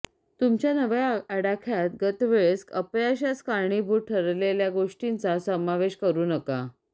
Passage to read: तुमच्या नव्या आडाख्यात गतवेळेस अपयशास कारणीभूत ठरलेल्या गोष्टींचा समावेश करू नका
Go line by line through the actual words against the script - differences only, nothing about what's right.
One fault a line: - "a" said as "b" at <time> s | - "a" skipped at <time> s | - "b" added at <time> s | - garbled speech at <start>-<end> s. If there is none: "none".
none